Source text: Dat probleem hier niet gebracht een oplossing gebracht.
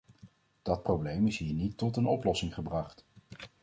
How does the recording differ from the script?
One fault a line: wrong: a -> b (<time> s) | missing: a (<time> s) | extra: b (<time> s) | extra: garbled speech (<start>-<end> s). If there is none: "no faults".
extra: is (1.3 s)
wrong: gebracht -> tot (1.8 s)